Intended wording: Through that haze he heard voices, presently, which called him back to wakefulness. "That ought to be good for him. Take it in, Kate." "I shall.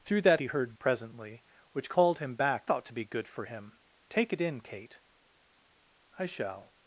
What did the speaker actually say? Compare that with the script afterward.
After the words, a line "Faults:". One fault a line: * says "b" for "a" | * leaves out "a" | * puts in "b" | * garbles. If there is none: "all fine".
Through that he heard presently, which called him back ought to be good for him. Take it in, Kate." "I shall.
Faults:
* leaves out "haze"
* leaves out "voices"
* leaves out "to wakefulness That"